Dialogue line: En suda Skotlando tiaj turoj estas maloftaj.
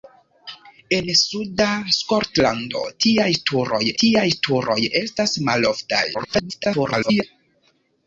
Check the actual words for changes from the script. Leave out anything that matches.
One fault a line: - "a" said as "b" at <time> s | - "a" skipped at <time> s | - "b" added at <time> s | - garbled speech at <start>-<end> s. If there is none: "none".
- "tiaj turoj" added at 4.0 s
- garbled speech at 6.1-7.2 s